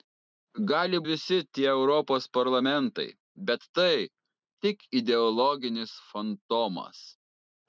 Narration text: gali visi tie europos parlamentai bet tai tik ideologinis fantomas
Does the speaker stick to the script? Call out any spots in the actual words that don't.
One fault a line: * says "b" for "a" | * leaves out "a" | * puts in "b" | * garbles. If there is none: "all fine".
all fine